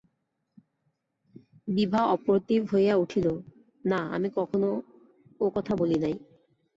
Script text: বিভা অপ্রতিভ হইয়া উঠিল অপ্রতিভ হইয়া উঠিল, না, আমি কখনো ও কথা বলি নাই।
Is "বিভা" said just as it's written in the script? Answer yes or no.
yes